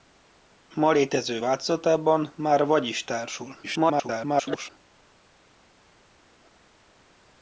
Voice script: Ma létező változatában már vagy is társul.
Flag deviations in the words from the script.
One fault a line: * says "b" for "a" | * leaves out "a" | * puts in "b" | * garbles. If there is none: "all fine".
* garbles